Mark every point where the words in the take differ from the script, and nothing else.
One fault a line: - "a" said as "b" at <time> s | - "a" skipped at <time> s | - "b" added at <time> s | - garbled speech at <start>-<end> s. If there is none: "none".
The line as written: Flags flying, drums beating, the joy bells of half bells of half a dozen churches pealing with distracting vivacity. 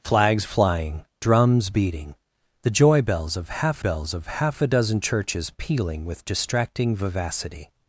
none